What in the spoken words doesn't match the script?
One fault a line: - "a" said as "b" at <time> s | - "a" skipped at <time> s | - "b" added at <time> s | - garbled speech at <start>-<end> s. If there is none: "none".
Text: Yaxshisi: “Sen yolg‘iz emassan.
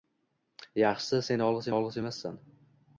- "yolg‘iz" added at 1.7 s